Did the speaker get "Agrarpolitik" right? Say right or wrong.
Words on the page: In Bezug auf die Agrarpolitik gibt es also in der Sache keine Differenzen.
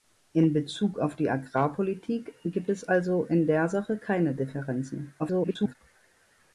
right